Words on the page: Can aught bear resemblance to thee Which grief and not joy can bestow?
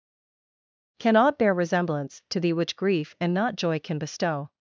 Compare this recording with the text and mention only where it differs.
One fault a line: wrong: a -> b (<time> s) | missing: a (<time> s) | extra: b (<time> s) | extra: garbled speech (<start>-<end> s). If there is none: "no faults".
no faults